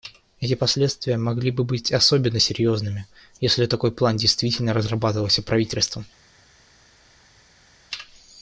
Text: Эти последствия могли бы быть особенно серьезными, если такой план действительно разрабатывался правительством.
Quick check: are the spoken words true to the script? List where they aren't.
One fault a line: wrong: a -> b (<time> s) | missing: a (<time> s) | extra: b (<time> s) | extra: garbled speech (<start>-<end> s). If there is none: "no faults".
no faults